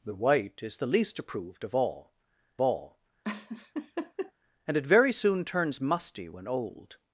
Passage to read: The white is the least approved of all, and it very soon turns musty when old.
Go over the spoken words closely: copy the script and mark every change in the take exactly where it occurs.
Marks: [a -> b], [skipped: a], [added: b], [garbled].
The white is the least approved of all, [added: all] and it very soon turns musty when old.